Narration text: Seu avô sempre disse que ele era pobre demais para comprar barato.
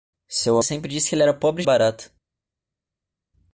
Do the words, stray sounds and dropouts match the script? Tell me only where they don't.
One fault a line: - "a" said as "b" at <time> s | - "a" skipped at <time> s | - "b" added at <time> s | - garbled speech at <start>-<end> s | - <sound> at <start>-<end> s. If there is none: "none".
- "avô" skipped at 0.6 s
- "demais para comprar" skipped at 1.6 s